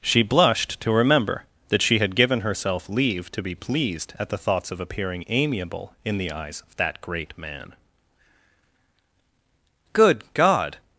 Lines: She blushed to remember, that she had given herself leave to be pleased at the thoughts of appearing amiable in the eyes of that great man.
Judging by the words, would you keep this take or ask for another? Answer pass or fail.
fail